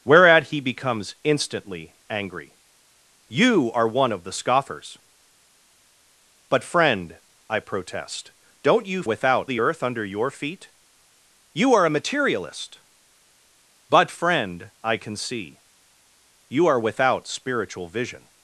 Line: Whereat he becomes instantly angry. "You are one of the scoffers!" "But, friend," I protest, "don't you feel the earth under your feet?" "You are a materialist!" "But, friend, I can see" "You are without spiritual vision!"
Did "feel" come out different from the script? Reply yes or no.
yes